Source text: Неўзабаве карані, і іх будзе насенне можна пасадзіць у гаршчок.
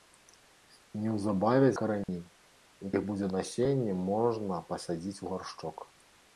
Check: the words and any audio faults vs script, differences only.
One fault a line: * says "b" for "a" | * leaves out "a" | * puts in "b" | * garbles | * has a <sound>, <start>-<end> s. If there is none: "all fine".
* has a dropout, 2.0-2.1 s